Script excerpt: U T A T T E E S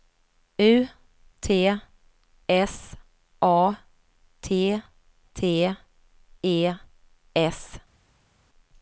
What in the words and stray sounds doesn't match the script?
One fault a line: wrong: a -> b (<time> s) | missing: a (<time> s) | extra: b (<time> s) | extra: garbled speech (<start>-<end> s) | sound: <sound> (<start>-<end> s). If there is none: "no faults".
extra: S (2.5 s)
missing: E (6.7 s)